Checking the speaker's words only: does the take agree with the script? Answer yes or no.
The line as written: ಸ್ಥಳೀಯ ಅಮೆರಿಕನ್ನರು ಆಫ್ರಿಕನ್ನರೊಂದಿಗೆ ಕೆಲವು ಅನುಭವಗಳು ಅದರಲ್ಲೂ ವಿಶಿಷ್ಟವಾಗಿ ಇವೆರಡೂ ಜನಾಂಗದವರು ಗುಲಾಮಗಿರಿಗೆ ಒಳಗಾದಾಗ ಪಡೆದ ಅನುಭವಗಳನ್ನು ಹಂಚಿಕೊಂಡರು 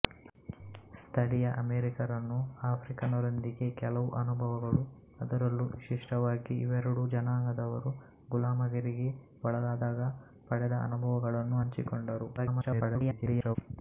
no